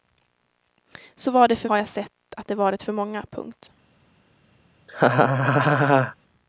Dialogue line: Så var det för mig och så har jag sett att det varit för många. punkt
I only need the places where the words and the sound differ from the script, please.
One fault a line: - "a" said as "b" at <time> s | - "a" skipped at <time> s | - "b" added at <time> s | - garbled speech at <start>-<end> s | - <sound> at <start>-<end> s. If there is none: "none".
- "mig och så" skipped at 1.7 s
- laugh at 4.9-6.2 s